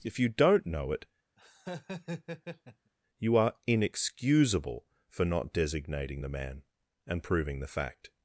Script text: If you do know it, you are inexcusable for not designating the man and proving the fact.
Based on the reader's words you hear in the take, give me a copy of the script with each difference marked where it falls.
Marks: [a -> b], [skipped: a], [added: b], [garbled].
If you [do -> don't] know it, you are inexcusable for not designating the man and proving the fact.